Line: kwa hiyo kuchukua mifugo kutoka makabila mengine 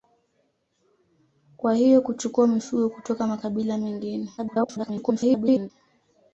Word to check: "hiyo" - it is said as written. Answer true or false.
true